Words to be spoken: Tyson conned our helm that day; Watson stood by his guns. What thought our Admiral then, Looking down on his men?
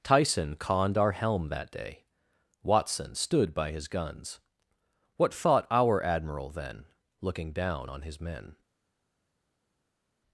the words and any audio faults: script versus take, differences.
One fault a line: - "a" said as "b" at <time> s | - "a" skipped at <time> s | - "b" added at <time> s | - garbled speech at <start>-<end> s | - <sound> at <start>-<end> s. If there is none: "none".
none